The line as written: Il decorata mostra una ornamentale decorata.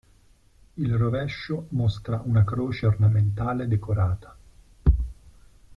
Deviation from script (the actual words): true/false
true